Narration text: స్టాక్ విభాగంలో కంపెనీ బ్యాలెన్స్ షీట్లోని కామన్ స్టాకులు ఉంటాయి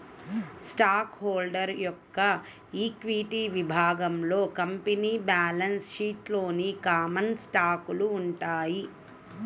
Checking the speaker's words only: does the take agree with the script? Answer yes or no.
no